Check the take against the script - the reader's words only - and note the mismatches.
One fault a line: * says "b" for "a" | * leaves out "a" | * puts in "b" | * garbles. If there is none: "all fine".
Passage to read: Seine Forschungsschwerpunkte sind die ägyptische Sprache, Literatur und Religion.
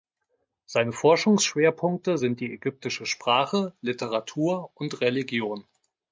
all fine